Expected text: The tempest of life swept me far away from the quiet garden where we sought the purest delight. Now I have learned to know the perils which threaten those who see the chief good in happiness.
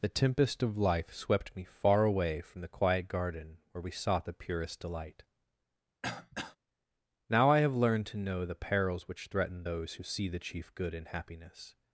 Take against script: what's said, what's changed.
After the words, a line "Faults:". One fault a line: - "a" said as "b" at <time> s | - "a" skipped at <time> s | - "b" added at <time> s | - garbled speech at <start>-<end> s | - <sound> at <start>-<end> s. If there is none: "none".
The tempest of life swept me far away from the quiet garden where we sought the purest delight. Now I have learned to know the perils which threaten those who see the chief good in happiness.
Faults:
- throat clearing at 6.0-6.6 s